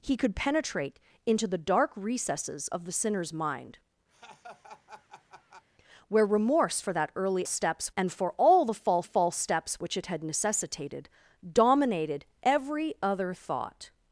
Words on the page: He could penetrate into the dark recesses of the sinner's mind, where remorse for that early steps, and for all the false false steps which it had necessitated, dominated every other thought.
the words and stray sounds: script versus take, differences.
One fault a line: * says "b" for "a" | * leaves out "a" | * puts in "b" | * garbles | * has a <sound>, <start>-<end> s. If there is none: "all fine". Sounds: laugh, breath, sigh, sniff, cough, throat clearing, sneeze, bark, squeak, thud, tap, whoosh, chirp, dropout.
* has a laugh, 4.1-5.7 s